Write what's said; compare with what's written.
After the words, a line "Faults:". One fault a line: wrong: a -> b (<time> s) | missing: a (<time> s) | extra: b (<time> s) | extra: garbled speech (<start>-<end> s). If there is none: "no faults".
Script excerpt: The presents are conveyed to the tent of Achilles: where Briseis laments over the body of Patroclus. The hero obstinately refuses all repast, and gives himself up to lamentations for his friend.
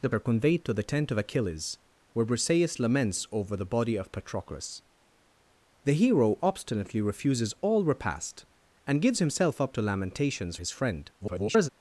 The are conveyed to the tent of Achilles: where Briseis laments over the body of Patroclus. The hero obstinately refuses all repast, and gives himself up to lamentations his friend. [garbled]
Faults:
missing: presents (0.1 s)
missing: for (10.6 s)
extra: garbled speech (11.2-11.7 s)